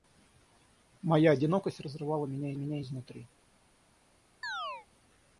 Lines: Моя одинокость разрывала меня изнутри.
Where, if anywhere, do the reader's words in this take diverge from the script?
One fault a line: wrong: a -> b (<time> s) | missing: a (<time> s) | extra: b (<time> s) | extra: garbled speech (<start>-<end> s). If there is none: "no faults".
extra: меня (2.5 s)